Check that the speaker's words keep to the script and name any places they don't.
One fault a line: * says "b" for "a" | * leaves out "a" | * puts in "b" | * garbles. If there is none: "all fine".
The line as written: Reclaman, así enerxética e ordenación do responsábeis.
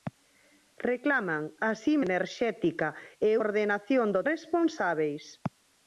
all fine